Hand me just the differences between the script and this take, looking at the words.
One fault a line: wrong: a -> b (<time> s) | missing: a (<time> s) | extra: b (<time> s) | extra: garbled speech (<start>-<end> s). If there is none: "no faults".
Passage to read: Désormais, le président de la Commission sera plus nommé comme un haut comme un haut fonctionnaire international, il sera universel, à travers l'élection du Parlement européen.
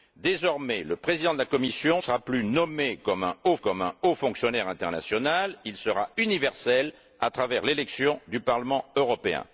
no faults